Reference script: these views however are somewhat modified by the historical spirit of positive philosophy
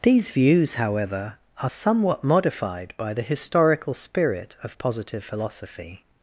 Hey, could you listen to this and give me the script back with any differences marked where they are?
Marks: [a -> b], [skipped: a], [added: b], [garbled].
these views however are somewhat modified by the historical spirit of positive philosophy